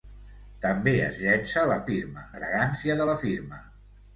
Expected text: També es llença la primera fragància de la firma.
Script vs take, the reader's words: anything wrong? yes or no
yes